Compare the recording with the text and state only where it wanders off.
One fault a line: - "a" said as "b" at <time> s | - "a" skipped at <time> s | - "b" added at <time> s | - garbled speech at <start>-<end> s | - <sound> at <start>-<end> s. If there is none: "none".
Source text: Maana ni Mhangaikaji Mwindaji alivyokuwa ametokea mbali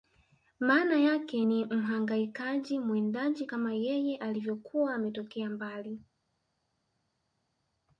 - "yake" added at 1.0 s
- "kama yeye" added at 3.4 s